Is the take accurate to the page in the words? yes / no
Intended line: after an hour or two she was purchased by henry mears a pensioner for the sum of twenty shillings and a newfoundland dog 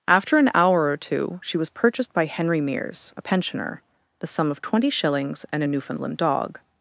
no